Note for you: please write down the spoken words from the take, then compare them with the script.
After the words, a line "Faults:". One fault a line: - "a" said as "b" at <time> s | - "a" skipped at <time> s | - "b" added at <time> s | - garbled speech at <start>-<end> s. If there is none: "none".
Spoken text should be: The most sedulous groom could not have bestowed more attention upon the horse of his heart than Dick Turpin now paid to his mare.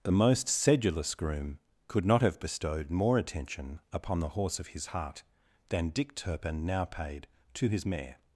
The most sedulous groom could not have bestowed more attention upon the horse of his heart than Dick Turpin now paid to his mare.
Faults:
none